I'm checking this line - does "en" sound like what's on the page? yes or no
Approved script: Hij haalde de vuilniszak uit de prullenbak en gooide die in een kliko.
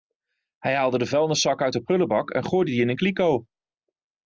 yes